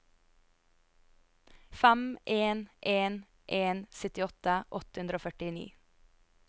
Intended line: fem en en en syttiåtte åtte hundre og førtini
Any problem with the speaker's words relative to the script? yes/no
no